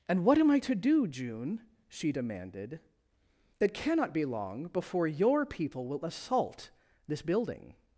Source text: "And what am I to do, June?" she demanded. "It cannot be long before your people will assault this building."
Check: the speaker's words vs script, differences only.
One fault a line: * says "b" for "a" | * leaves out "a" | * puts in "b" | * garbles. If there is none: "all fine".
all fine